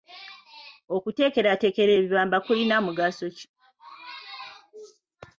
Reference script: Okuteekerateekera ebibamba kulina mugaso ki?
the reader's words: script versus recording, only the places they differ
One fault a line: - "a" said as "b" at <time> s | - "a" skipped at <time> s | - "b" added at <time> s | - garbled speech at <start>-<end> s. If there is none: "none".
none